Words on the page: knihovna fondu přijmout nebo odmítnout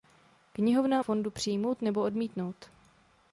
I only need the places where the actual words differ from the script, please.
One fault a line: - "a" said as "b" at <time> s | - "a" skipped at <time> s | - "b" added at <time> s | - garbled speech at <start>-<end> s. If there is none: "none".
none